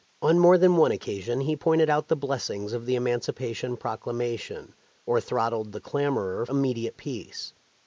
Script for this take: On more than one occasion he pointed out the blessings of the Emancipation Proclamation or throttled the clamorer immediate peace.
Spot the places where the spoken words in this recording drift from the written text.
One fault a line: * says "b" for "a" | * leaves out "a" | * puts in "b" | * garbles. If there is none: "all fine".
all fine